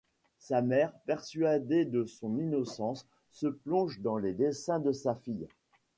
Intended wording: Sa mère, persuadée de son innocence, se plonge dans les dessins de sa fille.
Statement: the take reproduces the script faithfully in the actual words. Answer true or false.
true